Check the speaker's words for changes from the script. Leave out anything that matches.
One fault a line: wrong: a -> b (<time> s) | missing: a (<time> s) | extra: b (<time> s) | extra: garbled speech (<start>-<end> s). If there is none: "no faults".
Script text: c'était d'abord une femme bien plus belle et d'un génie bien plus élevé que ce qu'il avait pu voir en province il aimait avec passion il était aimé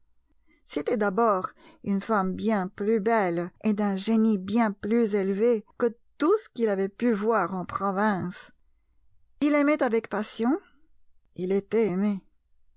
extra: tout (6.2 s)